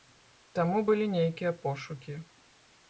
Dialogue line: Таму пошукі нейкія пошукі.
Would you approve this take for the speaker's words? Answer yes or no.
no